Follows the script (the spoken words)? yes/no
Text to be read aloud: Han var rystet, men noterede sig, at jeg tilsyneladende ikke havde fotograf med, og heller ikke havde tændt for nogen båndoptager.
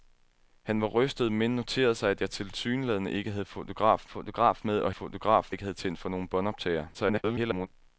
no